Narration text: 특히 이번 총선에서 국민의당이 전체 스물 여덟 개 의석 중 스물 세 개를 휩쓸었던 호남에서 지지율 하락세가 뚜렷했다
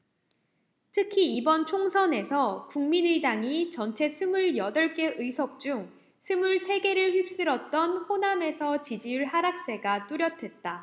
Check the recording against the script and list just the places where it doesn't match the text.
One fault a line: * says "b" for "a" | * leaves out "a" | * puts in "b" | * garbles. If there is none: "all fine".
all fine